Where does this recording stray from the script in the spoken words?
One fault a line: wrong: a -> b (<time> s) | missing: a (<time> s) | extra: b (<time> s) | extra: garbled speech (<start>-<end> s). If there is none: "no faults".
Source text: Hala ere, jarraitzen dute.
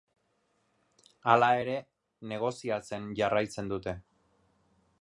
extra: negoziatzen (2.3 s)